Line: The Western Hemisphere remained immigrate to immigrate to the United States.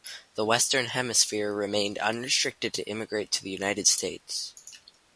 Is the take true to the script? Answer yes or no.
no